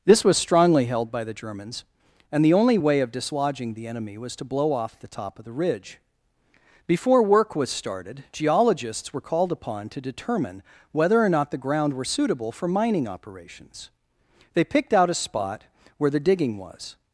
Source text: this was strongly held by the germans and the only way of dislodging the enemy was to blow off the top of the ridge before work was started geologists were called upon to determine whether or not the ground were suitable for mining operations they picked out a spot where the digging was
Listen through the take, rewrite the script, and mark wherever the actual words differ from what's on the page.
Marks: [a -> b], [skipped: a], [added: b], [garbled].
this was strongly held by the germans and the only way of dislodging the enemy was to blow off the top of the ridge before work was started geologists were called upon to determine whether or not the ground were suitable for mining operations they picked out a spot where the digging was